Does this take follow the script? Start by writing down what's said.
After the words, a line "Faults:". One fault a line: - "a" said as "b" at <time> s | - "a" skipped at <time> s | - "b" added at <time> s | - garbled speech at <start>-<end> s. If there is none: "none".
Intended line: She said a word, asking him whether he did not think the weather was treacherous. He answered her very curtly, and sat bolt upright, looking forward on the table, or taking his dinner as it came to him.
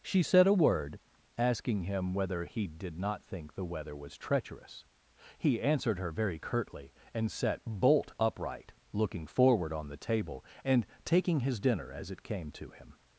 She said a word, asking him whether he did not think the weather was treacherous. He answered her very curtly, and sat bolt upright, looking forward on the table, and taking his dinner as it came to him.
Faults:
- "or" said as "and" at 10.6 s